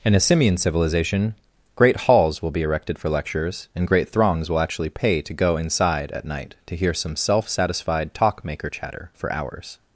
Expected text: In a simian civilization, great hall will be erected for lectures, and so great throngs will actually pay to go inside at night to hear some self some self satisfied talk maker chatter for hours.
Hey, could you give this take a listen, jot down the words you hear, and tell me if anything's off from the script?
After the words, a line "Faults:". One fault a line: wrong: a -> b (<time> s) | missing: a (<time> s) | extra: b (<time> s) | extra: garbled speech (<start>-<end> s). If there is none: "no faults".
In a simian civilization, great halls will be erected for lectures, and great throngs will actually pay to go inside at night to hear some self satisfied talk maker chatter for hours.
Faults:
wrong: hall -> halls (2.0 s)
missing: so (3.9 s)
missing: some self (7.5 s)